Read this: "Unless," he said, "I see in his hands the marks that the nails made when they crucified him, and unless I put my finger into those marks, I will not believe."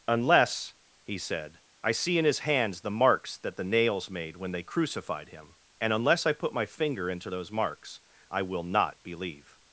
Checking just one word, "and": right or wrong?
right